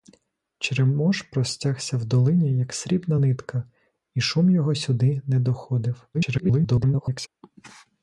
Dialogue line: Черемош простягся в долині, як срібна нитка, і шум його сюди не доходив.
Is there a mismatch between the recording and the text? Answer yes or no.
yes